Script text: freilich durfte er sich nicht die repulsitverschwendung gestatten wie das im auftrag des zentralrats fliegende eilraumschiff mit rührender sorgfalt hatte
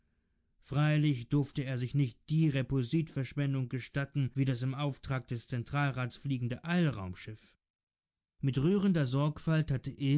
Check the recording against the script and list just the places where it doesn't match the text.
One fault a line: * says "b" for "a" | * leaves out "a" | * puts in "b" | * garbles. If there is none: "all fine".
all fine